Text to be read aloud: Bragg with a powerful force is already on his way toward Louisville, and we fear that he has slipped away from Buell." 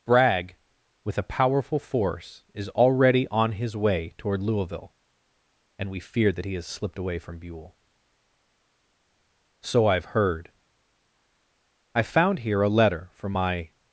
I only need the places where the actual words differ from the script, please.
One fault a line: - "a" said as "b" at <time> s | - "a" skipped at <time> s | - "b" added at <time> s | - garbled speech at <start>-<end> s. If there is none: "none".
- "So I've heard I found here a letter from my" added at 9.6 s